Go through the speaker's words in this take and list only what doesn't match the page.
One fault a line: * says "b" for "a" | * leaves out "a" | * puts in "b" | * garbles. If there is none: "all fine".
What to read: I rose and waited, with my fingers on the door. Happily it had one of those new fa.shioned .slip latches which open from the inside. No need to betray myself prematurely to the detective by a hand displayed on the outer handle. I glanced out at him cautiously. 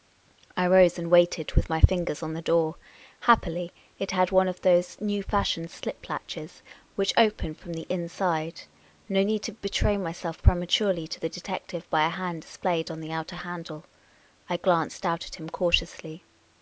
all fine